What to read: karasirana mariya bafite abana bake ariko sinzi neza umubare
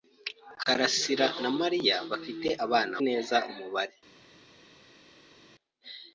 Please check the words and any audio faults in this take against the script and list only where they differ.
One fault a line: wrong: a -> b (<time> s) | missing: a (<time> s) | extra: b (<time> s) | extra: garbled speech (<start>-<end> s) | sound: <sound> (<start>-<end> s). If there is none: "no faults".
missing: bake ariko sinzi (2.9 s)